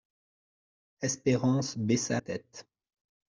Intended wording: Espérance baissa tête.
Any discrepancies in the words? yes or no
no